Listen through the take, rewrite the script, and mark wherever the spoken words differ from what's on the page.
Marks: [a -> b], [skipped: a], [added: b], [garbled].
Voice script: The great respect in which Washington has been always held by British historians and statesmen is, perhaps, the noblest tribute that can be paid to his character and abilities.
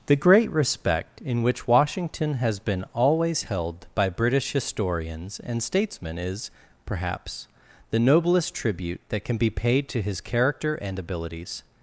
The great respect in which Washington has been always held by British historians and statesmen is, perhaps, the noblest tribute that can be paid to his character and abilities.